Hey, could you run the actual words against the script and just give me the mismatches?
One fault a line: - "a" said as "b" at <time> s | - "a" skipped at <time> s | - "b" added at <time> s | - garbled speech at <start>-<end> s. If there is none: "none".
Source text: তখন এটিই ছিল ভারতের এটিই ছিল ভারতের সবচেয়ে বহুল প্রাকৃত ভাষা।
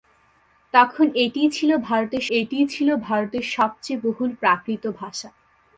none